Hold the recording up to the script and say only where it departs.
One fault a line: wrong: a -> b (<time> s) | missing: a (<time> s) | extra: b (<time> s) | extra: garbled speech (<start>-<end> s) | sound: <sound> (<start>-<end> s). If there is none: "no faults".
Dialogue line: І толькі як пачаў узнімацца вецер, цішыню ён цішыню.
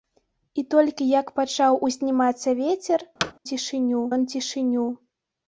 sound: thud (3.2-3.3 s)